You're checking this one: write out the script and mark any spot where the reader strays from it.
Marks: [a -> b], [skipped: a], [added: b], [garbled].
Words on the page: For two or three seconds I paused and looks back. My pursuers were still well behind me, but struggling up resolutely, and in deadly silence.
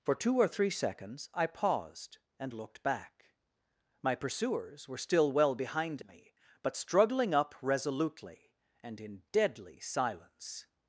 For two or three seconds I paused and [looks -> looked] back. My pursuers were still well behind me, but struggling up resolutely, and in deadly silence.